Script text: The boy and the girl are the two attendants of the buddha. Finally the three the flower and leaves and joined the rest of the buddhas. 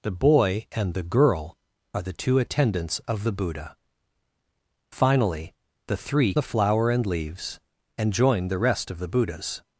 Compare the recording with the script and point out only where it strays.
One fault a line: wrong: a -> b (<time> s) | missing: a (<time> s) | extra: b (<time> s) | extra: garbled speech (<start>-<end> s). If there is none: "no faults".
no faults